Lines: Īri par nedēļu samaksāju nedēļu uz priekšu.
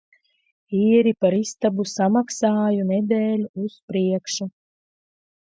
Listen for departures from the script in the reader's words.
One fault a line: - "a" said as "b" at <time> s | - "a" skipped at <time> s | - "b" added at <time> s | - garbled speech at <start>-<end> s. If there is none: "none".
- "nedēļu" said as "istabu" at 1.4 s